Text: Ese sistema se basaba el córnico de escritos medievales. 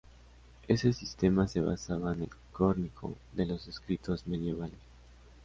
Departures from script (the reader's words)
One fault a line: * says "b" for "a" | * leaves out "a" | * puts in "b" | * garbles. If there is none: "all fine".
* puts in "en"
* puts in "los"